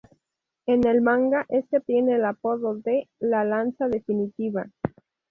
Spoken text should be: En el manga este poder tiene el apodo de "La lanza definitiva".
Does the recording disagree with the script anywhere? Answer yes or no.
yes